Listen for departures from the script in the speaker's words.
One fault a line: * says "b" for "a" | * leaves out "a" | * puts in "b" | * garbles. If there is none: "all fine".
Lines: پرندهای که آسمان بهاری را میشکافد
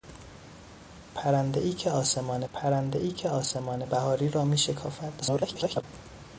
* puts in "پرندهای که آسمان"
* garbles